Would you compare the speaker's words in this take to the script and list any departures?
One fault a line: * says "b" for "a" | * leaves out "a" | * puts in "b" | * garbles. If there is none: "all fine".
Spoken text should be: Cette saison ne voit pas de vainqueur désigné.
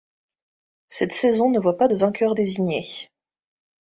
all fine